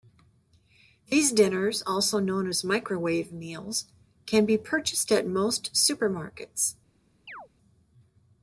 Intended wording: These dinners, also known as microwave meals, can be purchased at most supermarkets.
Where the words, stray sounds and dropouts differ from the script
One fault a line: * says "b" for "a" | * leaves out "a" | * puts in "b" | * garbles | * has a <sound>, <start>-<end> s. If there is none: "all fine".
* has a chirp, 7.3-7.5 s